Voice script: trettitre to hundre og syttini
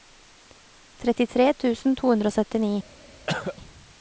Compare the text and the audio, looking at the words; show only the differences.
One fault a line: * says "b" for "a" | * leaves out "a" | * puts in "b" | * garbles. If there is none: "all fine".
* puts in "tusen"